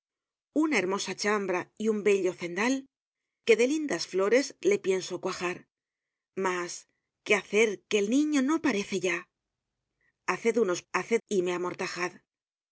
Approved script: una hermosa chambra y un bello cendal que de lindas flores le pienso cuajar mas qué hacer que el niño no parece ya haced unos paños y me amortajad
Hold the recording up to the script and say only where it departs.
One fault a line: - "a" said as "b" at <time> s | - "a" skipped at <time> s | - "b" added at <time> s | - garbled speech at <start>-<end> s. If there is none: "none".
- "paños" said as "haced" at 10.9 s